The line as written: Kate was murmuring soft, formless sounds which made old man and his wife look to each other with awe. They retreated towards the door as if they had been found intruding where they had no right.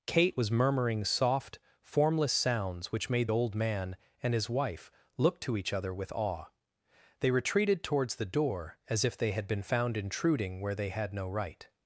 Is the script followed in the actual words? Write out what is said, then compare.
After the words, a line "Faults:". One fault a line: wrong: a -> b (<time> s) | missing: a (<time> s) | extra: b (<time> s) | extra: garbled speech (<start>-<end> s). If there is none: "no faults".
Kate was murmuring soft, formless sounds which made old man and his wife look to each other with awe. They retreated towards the door as if they had been found intruding where they had no right.
Faults:
no faults